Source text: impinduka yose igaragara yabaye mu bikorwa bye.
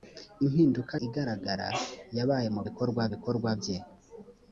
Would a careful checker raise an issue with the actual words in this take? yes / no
yes